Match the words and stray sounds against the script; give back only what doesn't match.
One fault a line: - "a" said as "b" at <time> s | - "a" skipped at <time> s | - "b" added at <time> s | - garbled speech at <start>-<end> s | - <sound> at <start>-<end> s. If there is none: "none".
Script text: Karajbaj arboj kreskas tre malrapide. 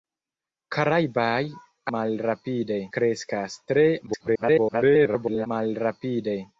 - "arboj" said as "malrapide" at 2.0 s
- garbled speech at 4.1-5.5 s